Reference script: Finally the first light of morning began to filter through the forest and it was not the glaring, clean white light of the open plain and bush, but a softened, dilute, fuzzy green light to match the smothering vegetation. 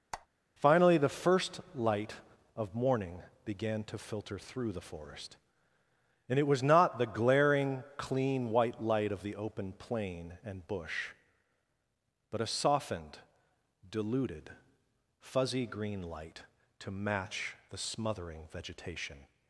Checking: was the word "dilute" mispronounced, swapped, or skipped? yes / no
yes